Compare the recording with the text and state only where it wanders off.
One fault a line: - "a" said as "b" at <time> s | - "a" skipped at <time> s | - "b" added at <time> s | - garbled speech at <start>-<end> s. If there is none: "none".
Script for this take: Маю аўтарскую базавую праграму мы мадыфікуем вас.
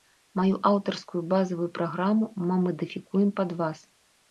- "пад" added at 3.4 s